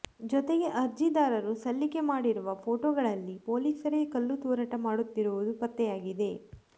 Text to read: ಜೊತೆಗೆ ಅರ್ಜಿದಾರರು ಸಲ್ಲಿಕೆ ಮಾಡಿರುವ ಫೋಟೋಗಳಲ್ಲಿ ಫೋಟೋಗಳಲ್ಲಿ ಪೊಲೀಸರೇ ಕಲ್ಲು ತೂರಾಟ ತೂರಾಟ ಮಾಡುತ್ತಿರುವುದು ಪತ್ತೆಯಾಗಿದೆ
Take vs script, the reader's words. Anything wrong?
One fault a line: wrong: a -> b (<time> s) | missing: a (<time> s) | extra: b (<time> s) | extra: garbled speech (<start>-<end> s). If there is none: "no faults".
missing: ಫೋಟೋಗಳಲ್ಲಿ (3.4 s)
missing: ತೂರಾಟ (4.7 s)